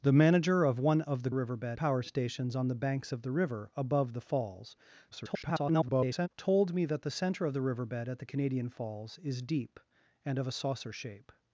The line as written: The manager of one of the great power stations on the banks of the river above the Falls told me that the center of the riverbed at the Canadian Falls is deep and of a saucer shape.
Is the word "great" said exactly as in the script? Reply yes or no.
no